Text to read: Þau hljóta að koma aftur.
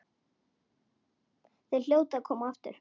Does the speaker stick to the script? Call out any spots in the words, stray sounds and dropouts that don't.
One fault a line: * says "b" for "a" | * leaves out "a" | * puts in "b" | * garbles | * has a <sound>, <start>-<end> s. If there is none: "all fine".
all fine